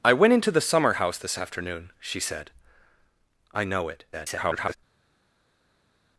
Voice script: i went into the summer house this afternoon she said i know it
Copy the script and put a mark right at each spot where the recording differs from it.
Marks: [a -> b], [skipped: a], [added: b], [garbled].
i went into the summer house this afternoon she said i know it [garbled]